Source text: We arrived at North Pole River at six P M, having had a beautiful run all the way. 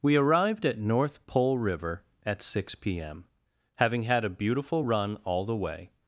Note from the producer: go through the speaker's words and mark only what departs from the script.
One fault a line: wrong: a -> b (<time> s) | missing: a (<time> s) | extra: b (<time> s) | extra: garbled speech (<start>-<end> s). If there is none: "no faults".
no faults